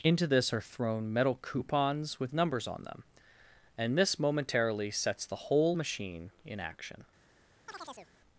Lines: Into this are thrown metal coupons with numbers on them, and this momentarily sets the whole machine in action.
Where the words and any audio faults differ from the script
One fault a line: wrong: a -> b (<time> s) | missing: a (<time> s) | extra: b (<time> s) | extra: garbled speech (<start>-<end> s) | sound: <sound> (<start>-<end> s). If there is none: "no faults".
sound: chirp (7.7-8.1 s)